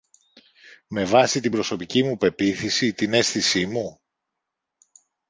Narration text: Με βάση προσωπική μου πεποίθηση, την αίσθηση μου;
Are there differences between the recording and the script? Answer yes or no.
yes